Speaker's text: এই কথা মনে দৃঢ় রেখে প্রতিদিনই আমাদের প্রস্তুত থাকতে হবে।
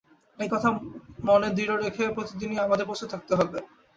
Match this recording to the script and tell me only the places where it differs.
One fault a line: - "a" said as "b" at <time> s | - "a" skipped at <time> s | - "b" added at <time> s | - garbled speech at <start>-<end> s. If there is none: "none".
none